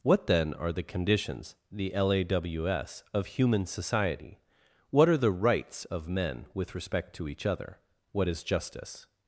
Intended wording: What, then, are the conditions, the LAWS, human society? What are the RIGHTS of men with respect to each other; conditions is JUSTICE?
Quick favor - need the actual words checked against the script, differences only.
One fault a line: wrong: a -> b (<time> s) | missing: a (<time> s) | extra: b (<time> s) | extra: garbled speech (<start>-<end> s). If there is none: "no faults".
extra: of (3.1 s)
wrong: conditions -> what (8.1 s)